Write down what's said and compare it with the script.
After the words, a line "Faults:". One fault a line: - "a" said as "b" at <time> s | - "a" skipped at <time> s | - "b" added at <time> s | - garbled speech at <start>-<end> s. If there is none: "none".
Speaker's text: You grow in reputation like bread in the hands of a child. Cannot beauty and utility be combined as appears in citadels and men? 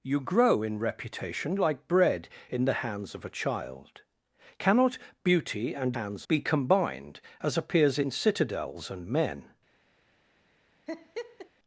You grow in reputation like bread in the hands of a child. Cannot beauty and hands be combined as appears in citadels and men?
Faults:
- "utility" said as "hands" at 6.0 s